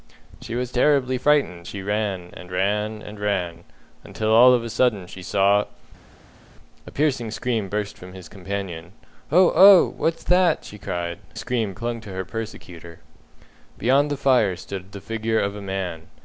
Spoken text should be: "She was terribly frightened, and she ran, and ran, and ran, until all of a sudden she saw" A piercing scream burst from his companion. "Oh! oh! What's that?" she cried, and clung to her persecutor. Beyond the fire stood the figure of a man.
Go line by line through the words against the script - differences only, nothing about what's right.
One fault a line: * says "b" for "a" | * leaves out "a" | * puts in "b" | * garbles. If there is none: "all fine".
* leaves out "and"
* says "scream" for "and"